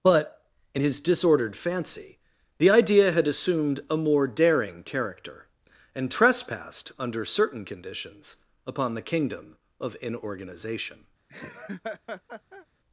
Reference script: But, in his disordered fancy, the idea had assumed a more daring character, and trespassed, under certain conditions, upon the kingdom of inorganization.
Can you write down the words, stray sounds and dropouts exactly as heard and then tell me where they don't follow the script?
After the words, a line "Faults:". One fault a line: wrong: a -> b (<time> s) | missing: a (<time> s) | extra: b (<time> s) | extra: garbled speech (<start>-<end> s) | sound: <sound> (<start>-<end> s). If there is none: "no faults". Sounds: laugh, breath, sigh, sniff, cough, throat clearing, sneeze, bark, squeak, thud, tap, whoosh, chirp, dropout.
But, in his disordered fancy, the idea had assumed a more daring character, and trespassed, under certain conditions, upon the kingdom of inorganization.
Faults:
sound: laugh (11.3-12.7 s)